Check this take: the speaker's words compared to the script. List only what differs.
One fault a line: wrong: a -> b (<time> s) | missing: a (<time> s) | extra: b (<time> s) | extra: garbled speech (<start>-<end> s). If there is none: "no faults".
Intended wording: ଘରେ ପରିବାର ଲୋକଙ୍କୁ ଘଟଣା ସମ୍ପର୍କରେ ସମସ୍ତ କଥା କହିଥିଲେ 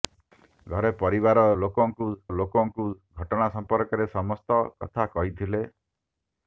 extra: ଲୋକଙ୍କୁ (2.3 s)